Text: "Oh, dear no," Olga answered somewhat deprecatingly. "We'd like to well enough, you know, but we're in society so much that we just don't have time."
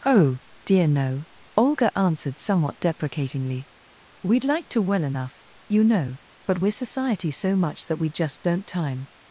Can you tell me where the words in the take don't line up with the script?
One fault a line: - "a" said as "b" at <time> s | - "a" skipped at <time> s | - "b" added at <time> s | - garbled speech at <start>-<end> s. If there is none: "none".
- "in" skipped at 6.7 s
- "have" skipped at 8.7 s